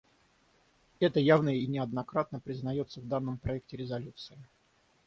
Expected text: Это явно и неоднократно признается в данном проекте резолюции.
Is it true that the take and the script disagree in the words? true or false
false